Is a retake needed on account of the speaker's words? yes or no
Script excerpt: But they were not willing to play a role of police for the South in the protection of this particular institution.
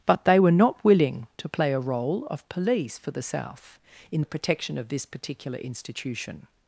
no